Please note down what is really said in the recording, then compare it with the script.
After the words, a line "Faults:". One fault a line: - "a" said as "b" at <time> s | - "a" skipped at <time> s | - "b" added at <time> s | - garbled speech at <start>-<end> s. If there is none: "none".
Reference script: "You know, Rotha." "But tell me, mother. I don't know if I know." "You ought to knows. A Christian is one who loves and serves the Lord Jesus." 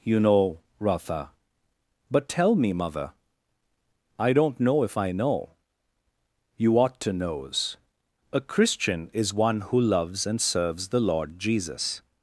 "You know, Rotha." "But tell me, mother. I don't know if I know." "You ought to knows. A Christian is one who loves and serves the Lord Jesus."
Faults:
none